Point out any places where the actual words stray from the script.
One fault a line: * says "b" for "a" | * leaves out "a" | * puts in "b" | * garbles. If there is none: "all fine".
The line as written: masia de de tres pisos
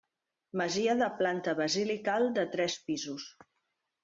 * puts in "planta basilical"